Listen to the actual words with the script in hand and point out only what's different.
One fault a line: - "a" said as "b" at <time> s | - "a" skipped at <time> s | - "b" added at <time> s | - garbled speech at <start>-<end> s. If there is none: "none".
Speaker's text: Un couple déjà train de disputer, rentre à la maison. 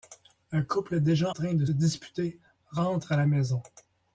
none